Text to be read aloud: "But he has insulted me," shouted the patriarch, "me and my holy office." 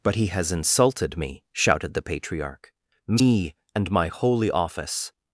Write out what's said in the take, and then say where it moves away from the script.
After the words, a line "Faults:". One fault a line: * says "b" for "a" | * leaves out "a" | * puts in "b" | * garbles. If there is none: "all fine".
"But he has insulted me," shouted the patriarch, "me and my holy office."
Faults:
all fine